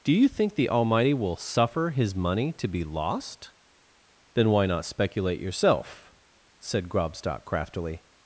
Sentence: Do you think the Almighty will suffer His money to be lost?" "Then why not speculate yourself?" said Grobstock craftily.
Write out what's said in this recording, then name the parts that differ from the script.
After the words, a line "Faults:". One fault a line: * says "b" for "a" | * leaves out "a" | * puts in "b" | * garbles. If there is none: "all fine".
Do you think the Almighty will suffer His money to be lost?" "Then why not speculate yourself?" said Grobstock craftily.
Faults:
all fine